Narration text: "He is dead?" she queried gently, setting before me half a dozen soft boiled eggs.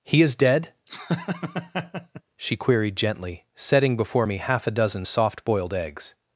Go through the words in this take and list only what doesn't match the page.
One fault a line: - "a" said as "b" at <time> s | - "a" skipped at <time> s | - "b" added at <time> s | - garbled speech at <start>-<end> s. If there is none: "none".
none